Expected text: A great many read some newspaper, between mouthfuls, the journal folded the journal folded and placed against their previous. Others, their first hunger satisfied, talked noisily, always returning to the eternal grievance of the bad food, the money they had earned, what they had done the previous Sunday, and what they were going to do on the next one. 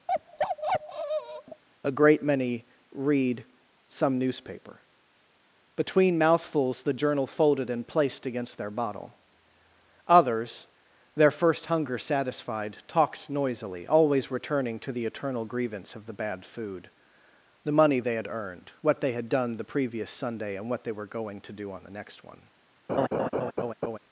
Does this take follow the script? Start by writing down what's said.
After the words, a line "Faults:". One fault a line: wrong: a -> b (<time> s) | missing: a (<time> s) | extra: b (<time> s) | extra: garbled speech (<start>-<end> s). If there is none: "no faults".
A great many read some newspaper, between mouthfuls, the journal folded and placed against their bottle. Others, their first hunger satisfied, talked noisily, always returning to the eternal grievance of the bad food, the money they had earned, what they had done the previous Sunday, and what they were going to do on the next one.
Faults:
missing: the journal folded (7.7 s)
wrong: previous -> bottle (8.7 s)